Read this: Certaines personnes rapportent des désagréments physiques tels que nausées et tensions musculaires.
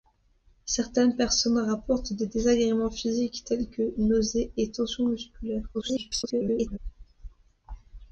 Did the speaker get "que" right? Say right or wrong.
right